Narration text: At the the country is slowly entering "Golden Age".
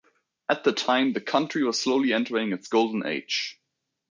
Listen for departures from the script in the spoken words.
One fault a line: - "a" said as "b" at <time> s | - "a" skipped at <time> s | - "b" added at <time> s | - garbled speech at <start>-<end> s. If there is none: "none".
- "time" added at 0.7 s
- "is" said as "was" at 1.6 s
- "its" added at 2.5 s